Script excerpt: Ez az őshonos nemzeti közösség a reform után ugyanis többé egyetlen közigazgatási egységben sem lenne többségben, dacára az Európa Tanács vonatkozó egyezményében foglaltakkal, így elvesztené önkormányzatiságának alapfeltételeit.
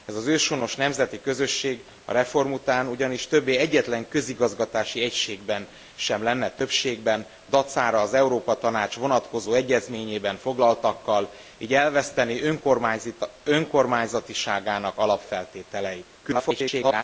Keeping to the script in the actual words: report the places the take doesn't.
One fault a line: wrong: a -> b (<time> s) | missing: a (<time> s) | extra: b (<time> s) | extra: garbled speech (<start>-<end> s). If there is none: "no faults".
extra: garbled speech (16.2-17.0 s)